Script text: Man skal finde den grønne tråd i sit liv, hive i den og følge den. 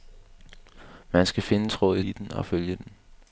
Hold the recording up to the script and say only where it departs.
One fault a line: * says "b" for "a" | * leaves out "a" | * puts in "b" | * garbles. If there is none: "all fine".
* leaves out "den grønne"
* leaves out "sit liv hive"